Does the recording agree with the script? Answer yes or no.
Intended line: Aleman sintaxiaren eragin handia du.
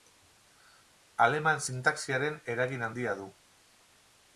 yes